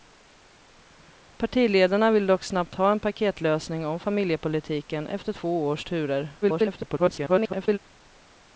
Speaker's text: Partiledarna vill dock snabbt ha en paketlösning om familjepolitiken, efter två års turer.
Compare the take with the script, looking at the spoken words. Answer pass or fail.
fail